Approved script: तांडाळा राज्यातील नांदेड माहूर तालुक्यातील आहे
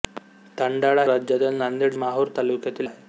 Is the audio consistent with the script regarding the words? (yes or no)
yes